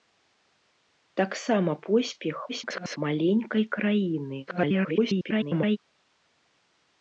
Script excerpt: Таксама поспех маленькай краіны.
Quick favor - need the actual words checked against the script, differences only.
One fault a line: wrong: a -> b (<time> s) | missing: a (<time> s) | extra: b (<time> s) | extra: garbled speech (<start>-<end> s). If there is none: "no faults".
extra: garbled speech (2.5-3.0 s)
extra: garbled speech (4.5-5.8 s)